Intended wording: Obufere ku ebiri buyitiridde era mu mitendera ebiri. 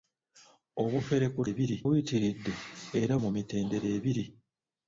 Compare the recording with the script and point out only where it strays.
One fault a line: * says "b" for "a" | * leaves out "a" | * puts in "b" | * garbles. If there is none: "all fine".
all fine